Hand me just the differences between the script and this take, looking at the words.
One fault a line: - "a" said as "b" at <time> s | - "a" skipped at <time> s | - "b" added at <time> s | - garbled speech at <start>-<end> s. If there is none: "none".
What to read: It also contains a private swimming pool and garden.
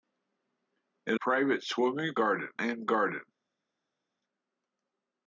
- "also contains a" skipped at 1.2 s
- "pool" said as "garden" at 2.1 s